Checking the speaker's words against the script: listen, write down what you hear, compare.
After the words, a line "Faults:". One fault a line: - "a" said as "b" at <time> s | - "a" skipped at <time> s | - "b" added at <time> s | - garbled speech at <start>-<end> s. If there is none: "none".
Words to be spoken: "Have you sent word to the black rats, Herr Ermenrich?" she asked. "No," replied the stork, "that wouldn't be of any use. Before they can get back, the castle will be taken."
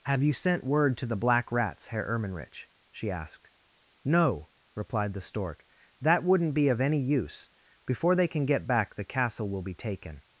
"Have you sent word to the black rats, Herr Ermenrich?" she asked. "No," replied the stork, "that wouldn't be of any use. Before they can get back, the castle will be taken."
Faults:
none